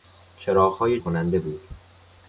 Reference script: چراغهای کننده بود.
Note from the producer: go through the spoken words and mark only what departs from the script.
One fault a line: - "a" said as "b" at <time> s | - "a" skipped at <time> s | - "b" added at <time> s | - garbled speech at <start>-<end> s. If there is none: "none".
none